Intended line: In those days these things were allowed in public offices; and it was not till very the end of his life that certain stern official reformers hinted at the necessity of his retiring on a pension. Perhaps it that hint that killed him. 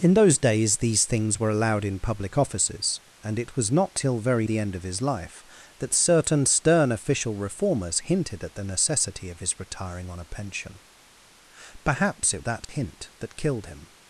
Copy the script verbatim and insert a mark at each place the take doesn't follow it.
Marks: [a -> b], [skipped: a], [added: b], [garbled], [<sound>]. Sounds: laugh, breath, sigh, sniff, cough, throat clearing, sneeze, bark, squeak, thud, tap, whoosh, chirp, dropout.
In those days these things were allowed in public offices; and it was not till very the end of his life that certain stern official reformers hinted at the necessity of his retiring on a pension. Perhaps it that [dropout] hint that killed him.